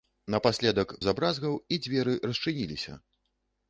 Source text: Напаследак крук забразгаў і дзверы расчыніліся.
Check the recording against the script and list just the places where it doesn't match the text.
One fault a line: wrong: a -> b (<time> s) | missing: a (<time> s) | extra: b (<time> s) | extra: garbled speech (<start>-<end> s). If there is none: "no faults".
missing: крук (0.9 s)